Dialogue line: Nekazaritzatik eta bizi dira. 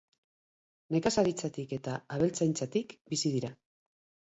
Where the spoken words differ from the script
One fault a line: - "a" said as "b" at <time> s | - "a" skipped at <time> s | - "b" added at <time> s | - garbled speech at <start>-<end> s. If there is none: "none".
- "abeltzaintzatik" added at 2.2 s